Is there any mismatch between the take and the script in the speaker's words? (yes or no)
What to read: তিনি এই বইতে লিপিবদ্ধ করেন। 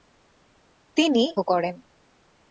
yes